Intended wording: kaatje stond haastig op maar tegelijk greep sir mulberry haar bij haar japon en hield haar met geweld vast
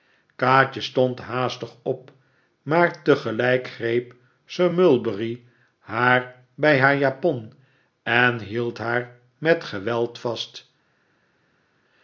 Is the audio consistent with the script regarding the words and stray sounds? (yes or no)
yes